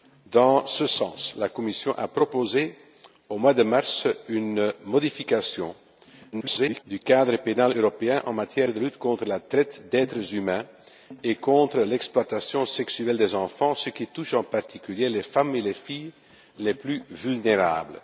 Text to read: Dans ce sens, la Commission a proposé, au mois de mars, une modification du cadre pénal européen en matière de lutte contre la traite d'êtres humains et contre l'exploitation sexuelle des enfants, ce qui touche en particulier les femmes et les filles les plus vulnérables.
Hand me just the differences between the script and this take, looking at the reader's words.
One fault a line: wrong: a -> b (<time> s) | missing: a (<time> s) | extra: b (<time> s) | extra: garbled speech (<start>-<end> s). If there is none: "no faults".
extra: garbled speech (6.3-6.8 s)